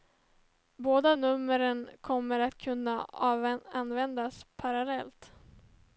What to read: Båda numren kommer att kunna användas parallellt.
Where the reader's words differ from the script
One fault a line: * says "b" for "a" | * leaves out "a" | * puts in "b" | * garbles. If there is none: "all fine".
all fine